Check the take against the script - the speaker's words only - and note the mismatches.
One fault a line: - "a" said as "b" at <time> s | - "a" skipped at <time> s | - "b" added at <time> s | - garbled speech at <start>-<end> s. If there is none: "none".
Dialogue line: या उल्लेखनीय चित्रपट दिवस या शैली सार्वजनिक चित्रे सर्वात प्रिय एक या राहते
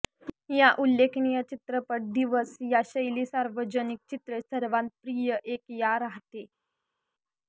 none